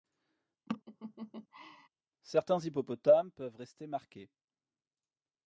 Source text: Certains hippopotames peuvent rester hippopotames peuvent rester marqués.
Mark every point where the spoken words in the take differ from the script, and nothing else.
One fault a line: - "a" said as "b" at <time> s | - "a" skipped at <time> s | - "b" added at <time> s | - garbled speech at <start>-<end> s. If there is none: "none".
- "hippopotames peuvent rester" skipped at 3.9 s